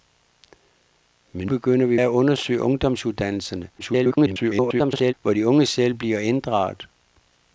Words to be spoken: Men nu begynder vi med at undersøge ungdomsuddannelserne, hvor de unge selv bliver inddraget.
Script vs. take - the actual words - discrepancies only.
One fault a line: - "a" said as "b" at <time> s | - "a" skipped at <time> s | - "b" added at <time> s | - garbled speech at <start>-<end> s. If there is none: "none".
- "nu" skipped at 1.5 s
- "med" skipped at 2.0 s
- garbled speech at 3.8-5.1 s